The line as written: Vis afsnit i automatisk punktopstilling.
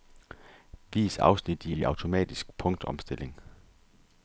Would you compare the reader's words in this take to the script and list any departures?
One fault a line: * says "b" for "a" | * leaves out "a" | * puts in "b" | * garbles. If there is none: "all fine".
* puts in "i"